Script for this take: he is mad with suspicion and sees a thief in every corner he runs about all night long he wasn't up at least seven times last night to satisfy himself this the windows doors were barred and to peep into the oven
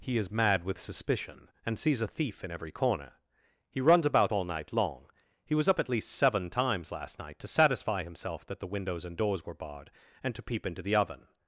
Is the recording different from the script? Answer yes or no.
yes